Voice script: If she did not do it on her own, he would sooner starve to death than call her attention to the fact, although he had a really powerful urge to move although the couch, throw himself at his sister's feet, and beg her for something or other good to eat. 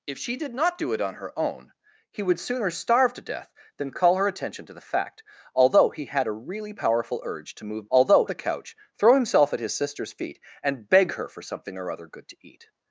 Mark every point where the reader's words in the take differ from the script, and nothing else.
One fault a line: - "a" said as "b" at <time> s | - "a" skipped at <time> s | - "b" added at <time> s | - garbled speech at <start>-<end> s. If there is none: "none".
none